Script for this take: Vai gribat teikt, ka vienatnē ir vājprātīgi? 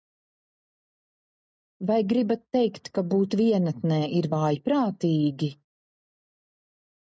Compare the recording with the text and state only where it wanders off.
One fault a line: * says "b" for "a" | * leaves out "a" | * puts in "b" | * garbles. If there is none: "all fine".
* puts in "būt"